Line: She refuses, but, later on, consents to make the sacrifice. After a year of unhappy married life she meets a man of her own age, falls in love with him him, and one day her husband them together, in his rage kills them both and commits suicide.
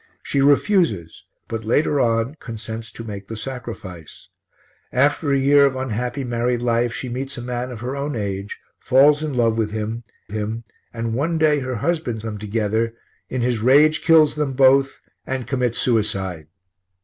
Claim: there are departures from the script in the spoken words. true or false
false